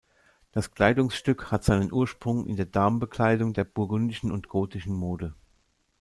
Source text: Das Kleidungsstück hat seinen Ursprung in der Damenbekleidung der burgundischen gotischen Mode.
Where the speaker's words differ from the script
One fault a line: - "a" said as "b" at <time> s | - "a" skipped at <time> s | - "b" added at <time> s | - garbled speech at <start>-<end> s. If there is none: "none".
- "und" added at 4.3 s